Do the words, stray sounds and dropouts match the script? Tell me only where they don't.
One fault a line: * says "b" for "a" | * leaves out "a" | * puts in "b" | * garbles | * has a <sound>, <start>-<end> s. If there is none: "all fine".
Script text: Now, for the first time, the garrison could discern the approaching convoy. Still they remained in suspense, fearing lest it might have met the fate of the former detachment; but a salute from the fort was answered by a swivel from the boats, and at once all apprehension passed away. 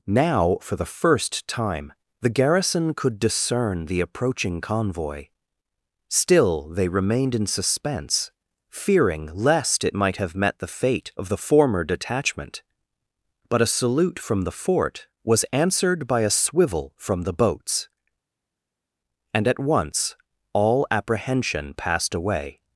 all fine